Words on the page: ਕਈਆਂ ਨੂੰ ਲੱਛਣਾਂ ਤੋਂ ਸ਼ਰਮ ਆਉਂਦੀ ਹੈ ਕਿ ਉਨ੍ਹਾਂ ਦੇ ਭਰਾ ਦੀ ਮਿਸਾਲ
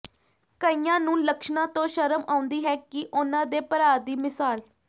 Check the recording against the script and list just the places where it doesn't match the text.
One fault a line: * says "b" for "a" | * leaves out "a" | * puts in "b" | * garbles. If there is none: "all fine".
all fine